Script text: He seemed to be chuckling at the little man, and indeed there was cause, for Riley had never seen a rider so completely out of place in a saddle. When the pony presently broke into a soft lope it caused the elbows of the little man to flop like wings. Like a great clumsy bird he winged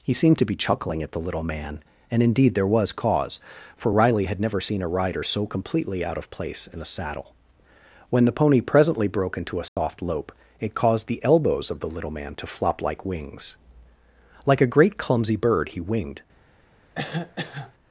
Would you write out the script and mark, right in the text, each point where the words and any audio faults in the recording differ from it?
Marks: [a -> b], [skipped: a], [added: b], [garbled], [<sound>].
He seemed to be chuckling at the little man, and indeed there was cause, for Riley had never seen a rider so completely out of place in a saddle. When the pony presently broke into a soft [dropout] lope it caused the elbows of the little man to flop like wings. Like a great clumsy bird he winged [cough]